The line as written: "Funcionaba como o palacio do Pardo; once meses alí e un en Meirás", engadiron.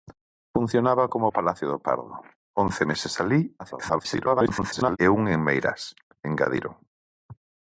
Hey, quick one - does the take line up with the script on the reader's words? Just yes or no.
no